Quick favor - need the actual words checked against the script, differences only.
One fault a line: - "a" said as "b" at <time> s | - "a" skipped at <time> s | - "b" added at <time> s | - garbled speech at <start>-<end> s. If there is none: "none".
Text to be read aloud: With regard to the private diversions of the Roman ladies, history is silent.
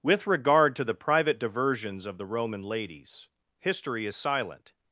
none